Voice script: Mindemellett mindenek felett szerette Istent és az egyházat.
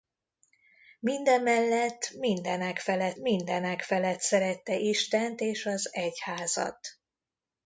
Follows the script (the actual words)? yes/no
no